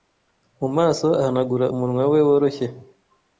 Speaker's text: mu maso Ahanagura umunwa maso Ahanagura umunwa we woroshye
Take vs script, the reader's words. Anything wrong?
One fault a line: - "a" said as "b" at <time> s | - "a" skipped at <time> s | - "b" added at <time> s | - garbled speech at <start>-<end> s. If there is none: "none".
- "maso Ahanagura umunwa" skipped at 2.0 s